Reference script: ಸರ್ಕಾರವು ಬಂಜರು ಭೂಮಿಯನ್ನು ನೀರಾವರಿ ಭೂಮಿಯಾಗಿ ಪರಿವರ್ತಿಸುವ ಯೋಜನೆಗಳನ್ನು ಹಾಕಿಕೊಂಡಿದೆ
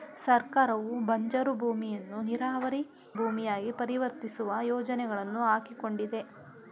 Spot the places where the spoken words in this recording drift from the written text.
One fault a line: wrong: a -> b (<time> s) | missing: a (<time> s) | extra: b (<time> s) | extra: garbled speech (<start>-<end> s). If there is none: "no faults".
no faults